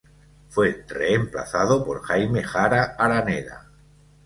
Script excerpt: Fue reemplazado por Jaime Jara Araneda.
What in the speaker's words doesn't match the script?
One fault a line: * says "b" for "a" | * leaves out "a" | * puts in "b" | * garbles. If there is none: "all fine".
all fine